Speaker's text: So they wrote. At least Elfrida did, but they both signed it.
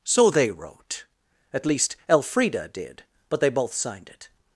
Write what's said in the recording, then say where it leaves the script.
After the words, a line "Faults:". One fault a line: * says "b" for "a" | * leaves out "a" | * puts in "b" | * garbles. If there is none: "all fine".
So they wrote. At least Elfrida did, but they both signed it.
Faults:
all fine